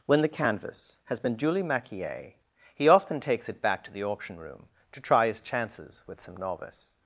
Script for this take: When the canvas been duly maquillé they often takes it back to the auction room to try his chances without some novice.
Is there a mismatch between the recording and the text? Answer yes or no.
yes